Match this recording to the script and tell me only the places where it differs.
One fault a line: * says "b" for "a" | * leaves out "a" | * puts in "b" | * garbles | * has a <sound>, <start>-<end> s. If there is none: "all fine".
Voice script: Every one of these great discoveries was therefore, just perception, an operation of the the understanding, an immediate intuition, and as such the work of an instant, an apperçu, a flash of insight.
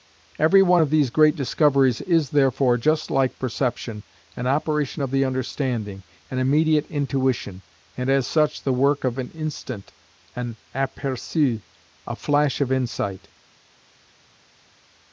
* says "is" for "was"
* puts in "like"
* leaves out "the"